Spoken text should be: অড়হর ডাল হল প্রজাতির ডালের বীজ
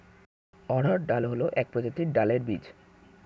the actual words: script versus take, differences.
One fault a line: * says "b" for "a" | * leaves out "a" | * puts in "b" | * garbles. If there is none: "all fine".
* puts in "এক"